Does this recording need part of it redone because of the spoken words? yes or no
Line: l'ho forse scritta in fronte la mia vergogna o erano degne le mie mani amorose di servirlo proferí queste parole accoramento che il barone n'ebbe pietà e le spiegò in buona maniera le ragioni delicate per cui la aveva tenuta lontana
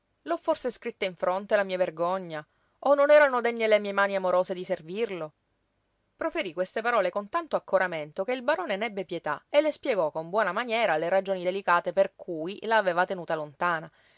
yes